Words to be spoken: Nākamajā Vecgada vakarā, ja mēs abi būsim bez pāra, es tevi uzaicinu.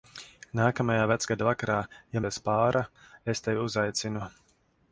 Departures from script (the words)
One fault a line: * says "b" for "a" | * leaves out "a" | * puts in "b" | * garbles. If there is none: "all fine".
* leaves out "mēs abi būsim"